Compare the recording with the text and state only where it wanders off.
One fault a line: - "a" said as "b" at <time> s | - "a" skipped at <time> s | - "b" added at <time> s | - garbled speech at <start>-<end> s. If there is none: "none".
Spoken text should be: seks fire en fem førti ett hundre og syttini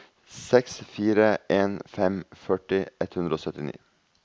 none